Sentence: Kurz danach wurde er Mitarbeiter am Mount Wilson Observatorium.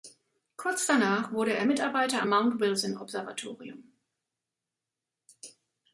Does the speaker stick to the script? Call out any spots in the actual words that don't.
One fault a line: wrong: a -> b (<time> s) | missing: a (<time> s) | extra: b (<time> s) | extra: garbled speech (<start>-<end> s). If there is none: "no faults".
no faults